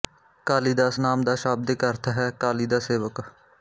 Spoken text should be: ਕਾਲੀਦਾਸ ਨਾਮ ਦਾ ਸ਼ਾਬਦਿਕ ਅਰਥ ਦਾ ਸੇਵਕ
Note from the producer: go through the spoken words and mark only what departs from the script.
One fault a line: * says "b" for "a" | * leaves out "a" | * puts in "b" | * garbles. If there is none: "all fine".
* puts in "ਹੈ ਕਾਲੀ"